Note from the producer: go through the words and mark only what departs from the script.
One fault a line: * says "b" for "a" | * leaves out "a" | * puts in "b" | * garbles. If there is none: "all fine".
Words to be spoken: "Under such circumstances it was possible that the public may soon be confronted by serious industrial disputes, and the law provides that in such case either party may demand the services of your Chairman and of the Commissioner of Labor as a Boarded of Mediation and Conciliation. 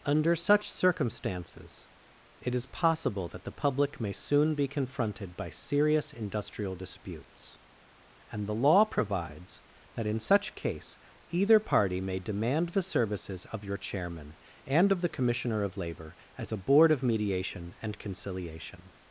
* says "is" for "was"
* says "Board" for "Boarded"